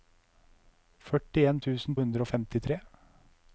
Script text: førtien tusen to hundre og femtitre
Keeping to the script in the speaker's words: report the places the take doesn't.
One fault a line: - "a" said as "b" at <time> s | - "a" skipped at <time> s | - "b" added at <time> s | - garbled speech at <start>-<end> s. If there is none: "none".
- "to" skipped at 2.0 s